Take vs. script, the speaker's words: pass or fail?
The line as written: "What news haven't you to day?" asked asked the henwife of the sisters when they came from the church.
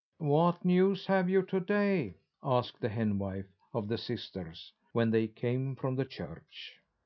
fail